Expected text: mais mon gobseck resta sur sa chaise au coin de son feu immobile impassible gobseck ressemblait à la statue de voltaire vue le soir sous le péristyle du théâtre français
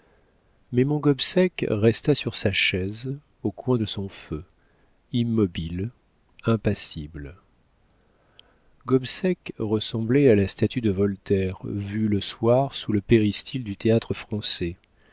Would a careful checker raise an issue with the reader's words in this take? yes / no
no